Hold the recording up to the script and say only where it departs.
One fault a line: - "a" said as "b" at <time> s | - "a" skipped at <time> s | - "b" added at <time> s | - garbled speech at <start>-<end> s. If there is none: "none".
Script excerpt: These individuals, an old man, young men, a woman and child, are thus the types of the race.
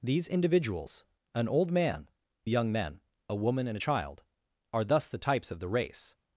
none